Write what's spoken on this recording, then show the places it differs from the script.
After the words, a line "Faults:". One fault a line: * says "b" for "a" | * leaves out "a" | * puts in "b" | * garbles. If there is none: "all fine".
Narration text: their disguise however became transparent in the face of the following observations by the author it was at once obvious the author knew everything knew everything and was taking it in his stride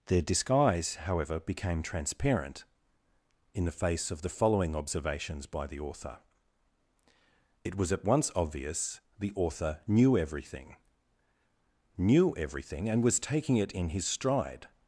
their disguise however became transparent in the face of the following observations by the author it was at once obvious the author knew everything knew everything and was taking it in his stride
Faults:
all fine